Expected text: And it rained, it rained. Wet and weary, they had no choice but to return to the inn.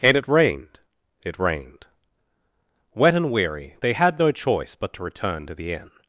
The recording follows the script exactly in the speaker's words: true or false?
true